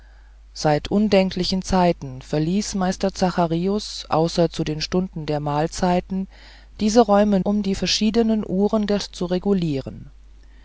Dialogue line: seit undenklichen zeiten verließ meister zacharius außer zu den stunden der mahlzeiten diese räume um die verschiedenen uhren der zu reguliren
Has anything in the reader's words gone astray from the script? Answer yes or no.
no